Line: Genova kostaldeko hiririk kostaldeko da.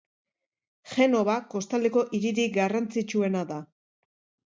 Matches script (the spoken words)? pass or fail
fail